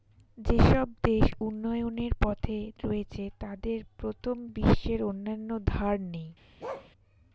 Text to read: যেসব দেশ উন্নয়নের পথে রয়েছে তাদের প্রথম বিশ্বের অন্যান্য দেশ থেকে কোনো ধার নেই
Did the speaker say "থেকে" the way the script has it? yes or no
no